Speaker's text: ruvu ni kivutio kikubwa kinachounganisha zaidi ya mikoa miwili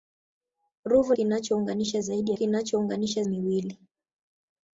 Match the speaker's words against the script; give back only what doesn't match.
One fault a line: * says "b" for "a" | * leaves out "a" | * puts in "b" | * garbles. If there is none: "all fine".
* leaves out "ni kivutio kikubwa"
* says "kinachounganisha" for "mikoa"